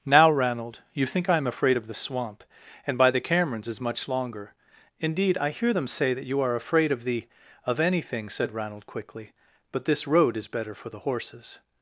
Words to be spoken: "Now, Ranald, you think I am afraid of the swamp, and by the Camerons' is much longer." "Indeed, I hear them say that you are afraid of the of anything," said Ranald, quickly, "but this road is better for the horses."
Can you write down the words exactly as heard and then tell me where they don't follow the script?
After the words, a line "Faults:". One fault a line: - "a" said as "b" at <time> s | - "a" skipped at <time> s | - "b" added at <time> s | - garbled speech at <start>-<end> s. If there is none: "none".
"Now, Ranald, you think I am afraid of the swamp, and by the Camerons' is much longer." "Indeed, I hear them say that you are afraid of the of anything," said Ranald, quickly, "but this road is better for the horses."
Faults:
none